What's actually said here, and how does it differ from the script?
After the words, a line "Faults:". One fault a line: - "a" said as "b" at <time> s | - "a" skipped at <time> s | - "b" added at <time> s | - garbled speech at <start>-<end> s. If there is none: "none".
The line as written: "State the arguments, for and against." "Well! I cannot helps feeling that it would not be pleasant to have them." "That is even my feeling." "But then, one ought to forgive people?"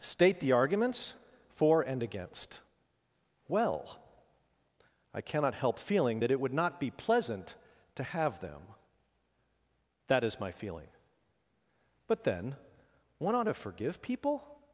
"State the arguments, for and against." "Well! I cannot help feeling that it would not be pleasant to have them." "That is my feeling." "But then, one ought to forgive people?"
Faults:
- "helps" said as "help" at 5.5 s
- "even" skipped at 10.4 s